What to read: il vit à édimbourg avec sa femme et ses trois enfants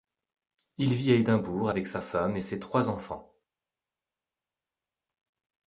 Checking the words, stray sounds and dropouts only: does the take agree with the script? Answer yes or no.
yes